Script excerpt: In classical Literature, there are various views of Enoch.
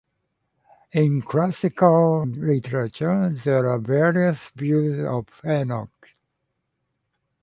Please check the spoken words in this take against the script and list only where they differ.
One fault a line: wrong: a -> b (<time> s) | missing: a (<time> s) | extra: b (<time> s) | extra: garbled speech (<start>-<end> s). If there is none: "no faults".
no faults